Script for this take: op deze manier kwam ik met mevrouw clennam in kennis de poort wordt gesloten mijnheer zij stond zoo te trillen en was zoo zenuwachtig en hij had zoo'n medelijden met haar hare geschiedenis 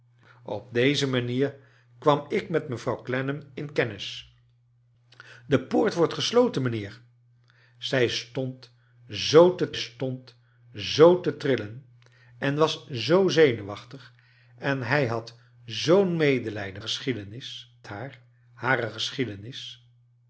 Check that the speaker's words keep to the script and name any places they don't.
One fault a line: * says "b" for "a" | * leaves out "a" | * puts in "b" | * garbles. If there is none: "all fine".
* puts in "stond zoo te"
* says "geschiedenis" for "met"